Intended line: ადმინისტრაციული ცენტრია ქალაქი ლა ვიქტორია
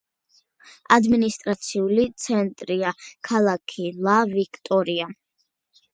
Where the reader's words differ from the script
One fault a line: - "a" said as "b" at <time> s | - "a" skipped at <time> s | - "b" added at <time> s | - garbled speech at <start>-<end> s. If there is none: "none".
none